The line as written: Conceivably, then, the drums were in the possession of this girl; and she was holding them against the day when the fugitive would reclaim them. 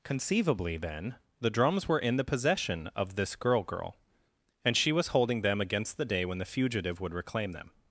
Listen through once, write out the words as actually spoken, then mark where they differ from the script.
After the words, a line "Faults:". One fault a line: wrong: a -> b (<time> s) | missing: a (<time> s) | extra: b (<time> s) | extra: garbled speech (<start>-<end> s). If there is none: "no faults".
Conceivably, then, the drums were in the possession of this girl girl; and she was holding them against the day when the fugitive would reclaim them.
Faults:
extra: girl (3.6 s)